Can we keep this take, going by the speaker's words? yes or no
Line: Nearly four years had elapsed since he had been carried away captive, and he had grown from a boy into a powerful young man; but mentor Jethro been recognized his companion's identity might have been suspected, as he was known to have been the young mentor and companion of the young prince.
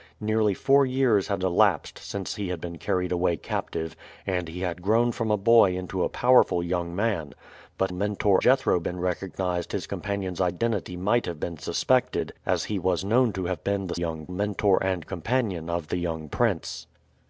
yes